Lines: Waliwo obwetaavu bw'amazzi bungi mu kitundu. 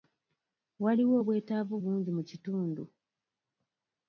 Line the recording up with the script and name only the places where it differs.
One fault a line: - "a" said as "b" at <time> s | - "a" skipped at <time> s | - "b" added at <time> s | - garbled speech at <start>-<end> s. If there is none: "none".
- "bw'amazzi" skipped at 1.7 s